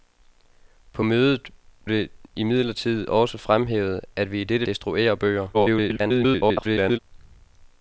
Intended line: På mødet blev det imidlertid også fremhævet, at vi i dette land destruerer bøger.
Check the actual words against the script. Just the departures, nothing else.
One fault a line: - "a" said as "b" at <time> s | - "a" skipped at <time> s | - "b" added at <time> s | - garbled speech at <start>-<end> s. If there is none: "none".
- "blev" skipped at 1.5 s
- "land" skipped at 4.7 s
- garbled speech at 5.5-7.0 s